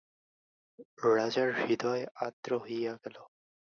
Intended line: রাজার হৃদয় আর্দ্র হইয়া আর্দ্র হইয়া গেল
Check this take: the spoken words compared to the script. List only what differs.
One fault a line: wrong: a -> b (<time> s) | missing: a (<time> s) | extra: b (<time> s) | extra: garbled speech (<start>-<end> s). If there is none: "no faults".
missing: আর্দ্র হইয়া (2.9 s)